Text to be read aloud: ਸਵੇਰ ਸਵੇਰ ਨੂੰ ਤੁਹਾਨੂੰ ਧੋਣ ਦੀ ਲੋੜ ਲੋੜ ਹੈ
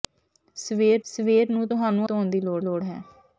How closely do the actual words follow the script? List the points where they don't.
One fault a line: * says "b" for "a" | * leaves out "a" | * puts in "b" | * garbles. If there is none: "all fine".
all fine